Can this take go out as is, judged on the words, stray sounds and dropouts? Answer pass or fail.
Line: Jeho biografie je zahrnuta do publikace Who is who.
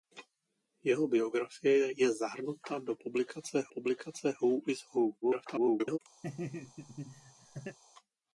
fail